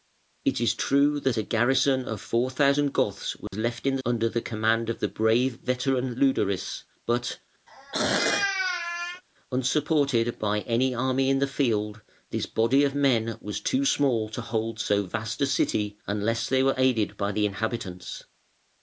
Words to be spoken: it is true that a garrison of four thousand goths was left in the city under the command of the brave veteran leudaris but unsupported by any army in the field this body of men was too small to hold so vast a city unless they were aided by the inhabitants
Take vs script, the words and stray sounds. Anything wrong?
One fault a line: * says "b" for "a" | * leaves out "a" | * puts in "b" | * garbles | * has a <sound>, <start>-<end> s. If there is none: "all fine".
* has a dropout, 3.5-3.5 s
* leaves out "city"
* has a throat clearing, 7.7-9.2 s